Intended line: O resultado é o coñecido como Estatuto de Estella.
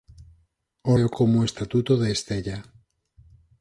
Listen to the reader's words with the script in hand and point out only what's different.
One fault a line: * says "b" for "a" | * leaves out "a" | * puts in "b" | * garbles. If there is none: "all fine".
* leaves out "resultado"
* leaves out "coñecido"